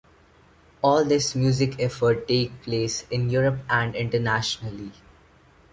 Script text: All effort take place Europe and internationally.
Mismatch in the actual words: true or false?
true